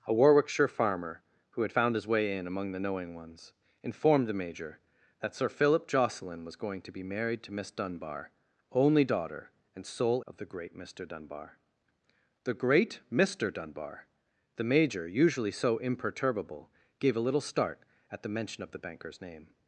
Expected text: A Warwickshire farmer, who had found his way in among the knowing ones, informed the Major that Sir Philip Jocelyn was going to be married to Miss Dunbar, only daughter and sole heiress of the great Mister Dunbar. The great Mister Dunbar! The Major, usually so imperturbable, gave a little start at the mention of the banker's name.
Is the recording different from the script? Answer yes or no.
yes